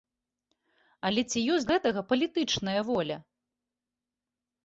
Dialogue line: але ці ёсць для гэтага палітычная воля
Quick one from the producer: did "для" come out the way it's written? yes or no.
no